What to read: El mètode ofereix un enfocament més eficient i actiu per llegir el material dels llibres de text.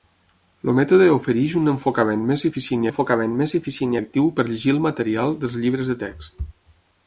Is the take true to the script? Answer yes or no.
no